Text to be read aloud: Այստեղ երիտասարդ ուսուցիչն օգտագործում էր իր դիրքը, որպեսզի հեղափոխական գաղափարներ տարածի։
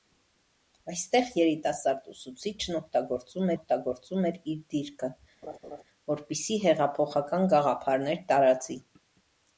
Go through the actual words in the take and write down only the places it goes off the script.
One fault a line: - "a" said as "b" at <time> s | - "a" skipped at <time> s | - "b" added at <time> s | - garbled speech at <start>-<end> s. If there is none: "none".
- "օգտագործում" added at 3.6 s